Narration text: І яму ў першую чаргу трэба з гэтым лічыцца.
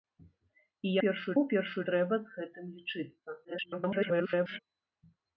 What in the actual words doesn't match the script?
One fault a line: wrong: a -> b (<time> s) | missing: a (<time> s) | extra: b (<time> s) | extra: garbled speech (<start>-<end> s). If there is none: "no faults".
wrong: яму -> першую (1.0 s)
missing: чаргу (1.8 s)
extra: garbled speech (3.4-4.6 s)